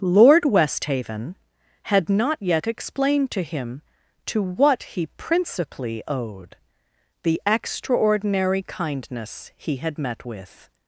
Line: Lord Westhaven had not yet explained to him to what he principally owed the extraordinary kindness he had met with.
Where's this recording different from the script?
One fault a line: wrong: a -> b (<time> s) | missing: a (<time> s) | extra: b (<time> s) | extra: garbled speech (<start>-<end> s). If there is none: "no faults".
no faults